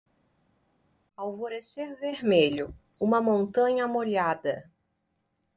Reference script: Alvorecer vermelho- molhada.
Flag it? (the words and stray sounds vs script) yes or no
yes